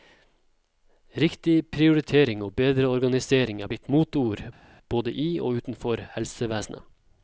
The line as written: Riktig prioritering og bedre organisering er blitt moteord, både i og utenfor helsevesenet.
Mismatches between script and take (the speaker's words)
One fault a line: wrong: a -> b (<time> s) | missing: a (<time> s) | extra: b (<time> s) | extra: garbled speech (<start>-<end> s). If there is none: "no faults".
no faults